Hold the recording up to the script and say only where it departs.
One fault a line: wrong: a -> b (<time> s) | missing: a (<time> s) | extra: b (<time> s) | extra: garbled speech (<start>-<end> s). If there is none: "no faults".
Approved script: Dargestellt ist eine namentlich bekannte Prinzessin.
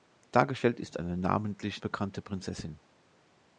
no faults